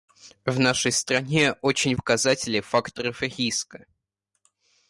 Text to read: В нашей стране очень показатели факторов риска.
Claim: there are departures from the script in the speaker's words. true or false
false